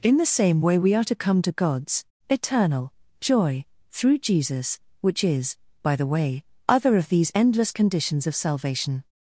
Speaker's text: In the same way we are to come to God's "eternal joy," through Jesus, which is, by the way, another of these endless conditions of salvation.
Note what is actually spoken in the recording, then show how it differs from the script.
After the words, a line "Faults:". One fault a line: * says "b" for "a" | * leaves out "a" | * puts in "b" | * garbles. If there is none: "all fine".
In the same way we are to come to God's "eternal joy," through Jesus, which is, by the way, other of these endless conditions of salvation.
Faults:
* says "other" for "another"